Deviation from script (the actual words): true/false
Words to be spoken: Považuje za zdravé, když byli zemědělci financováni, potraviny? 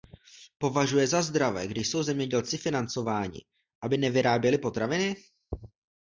true